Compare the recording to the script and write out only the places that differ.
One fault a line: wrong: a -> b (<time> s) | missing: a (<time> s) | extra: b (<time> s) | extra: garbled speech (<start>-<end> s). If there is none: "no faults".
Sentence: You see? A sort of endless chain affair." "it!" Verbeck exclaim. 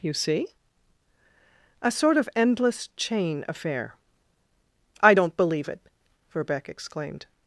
extra: I don't believe (5.0 s)
wrong: exclaim -> exclaimed (6.7 s)